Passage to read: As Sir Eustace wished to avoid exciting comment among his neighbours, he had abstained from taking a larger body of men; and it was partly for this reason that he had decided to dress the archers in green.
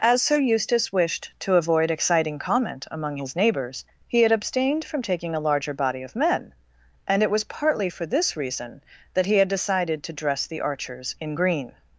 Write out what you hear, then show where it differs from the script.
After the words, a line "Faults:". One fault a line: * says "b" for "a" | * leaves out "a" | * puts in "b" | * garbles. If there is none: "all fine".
As Sir Eustace wished to avoid exciting comment among his neighbours, he had abstained from taking a larger body of men; and it was partly for this reason that he had decided to dress the archers in green.
Faults:
all fine